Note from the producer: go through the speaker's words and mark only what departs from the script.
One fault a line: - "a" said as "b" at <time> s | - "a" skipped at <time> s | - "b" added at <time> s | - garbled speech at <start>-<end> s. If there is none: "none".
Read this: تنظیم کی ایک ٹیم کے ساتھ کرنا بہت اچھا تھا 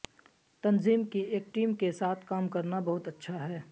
- "کام" added at 2.3 s
- "تھا" said as "ہے" at 3.5 s